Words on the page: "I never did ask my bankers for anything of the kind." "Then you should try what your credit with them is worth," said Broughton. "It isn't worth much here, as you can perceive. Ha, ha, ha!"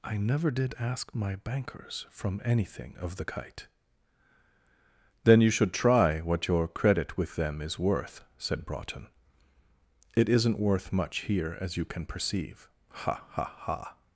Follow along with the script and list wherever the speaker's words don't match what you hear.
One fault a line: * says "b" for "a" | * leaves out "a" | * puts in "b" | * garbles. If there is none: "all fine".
* says "from" for "for"
* says "kite" for "kind"